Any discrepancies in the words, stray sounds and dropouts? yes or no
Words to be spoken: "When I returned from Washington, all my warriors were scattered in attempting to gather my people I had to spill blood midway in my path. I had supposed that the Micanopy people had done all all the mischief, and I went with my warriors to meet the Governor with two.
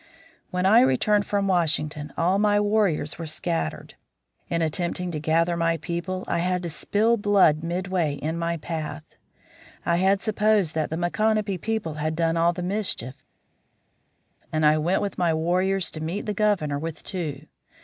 yes